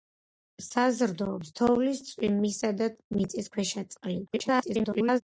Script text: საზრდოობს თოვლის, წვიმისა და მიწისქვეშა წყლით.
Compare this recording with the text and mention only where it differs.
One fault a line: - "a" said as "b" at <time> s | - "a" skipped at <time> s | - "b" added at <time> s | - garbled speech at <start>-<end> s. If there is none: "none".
- garbled speech at 4.3-5.2 s